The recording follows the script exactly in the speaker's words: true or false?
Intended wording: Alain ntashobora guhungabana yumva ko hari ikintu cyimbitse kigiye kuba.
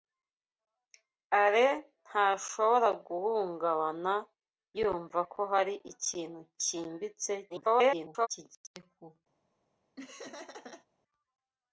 false